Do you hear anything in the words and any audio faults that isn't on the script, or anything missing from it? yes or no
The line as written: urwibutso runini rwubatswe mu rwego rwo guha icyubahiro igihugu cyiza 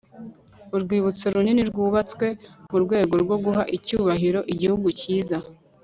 no